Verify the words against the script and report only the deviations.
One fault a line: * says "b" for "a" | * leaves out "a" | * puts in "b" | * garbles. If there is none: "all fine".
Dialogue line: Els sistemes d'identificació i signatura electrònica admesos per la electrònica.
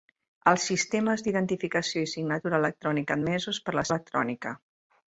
all fine